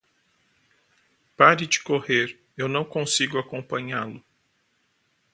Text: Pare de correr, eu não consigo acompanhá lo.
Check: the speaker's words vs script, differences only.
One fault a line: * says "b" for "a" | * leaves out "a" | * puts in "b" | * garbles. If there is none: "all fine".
all fine